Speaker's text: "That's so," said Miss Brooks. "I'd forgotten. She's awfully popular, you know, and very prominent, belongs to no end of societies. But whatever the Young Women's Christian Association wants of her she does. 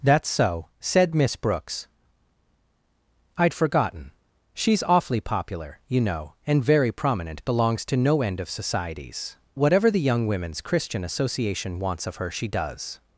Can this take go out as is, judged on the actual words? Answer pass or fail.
fail